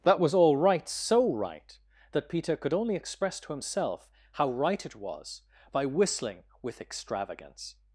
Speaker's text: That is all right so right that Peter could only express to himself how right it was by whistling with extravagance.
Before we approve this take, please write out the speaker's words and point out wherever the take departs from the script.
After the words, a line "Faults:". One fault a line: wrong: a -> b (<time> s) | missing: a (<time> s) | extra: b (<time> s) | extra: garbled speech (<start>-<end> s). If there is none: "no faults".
That was all right so right that Peter could only express to himself how right it was by whistling with extravagance.
Faults:
wrong: is -> was (0.2 s)